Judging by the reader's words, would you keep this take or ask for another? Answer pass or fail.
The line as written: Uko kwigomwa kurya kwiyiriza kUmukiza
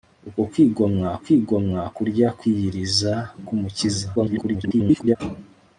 fail